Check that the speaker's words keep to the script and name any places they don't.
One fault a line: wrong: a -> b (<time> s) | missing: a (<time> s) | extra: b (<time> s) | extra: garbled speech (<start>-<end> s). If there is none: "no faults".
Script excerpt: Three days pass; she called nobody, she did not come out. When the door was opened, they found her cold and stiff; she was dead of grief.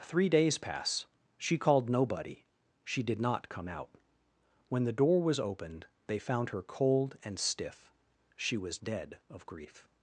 no faults